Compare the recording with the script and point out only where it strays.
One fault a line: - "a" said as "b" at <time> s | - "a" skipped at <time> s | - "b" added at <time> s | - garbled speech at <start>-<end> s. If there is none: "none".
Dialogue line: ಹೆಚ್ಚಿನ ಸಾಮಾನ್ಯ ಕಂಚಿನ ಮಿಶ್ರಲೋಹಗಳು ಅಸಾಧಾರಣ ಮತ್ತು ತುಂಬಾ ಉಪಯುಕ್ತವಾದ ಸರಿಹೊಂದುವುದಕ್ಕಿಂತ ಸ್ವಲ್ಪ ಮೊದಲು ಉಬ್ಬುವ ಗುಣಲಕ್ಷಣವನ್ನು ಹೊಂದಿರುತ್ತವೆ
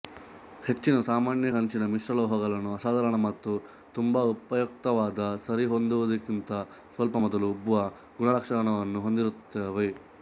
none